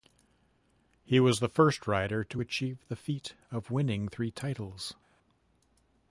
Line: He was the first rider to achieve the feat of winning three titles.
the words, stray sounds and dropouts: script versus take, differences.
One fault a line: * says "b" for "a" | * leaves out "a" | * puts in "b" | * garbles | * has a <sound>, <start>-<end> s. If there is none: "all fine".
all fine